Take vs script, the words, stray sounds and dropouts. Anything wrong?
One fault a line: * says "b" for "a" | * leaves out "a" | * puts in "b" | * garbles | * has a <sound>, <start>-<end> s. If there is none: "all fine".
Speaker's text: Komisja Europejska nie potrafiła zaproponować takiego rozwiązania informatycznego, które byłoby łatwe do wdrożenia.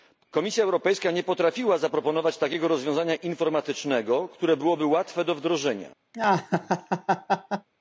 * has a laugh, 6.1-7.7 s